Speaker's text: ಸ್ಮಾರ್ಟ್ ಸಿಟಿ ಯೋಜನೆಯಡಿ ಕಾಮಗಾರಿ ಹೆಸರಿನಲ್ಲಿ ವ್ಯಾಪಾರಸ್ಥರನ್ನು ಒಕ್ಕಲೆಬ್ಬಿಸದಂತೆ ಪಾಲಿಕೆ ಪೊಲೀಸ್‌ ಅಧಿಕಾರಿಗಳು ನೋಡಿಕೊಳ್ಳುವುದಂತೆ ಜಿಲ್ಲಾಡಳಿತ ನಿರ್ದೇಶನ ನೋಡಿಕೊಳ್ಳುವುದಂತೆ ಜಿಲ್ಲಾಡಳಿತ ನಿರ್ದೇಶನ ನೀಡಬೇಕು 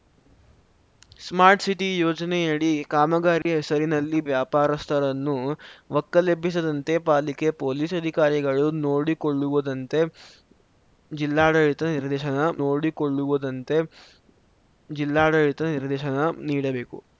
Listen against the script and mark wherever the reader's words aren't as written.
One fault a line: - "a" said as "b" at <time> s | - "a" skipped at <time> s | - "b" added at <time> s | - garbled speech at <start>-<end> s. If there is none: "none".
none